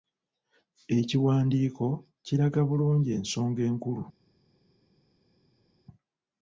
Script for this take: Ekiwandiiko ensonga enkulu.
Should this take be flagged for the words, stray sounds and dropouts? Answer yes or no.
yes